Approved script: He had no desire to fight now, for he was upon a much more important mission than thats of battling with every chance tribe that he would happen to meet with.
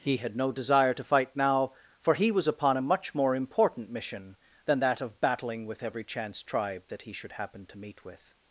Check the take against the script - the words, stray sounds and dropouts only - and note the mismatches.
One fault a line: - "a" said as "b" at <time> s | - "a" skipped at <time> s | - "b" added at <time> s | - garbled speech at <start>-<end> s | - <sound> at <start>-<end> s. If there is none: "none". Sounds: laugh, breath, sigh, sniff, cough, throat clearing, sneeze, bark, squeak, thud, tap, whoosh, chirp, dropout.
- "thats" said as "that" at 4.8 s
- "would" said as "should" at 7.1 s